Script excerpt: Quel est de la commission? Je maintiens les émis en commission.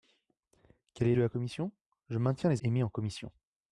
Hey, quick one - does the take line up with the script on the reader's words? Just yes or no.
yes